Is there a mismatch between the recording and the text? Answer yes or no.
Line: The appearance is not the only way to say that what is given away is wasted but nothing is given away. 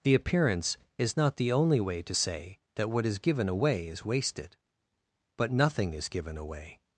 no